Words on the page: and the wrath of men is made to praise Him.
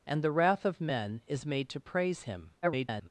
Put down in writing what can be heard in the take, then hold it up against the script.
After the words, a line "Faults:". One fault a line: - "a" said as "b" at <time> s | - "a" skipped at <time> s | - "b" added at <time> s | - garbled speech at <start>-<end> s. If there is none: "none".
and the wrath of men is made to praise Him. [garbled]
Faults:
- garbled speech at 2.6-3.1 s